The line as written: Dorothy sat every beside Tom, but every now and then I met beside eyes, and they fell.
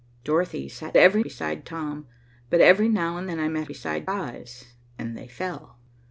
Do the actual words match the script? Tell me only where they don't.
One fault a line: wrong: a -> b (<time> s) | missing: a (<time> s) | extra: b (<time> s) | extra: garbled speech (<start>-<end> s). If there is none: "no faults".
no faults